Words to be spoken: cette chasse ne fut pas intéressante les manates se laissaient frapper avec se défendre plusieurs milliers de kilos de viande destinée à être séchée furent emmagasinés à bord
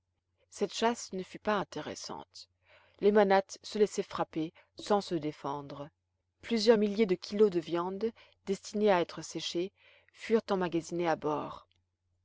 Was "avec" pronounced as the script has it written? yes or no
no